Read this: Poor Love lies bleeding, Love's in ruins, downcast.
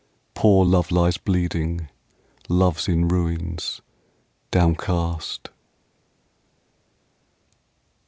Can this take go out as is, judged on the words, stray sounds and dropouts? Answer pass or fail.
pass